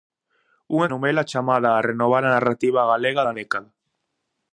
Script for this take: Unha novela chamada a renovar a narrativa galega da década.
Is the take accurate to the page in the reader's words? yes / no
yes